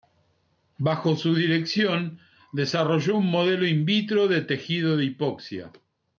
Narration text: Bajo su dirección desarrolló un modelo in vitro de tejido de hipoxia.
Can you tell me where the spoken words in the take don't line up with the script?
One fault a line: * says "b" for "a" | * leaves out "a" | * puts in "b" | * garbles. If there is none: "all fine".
all fine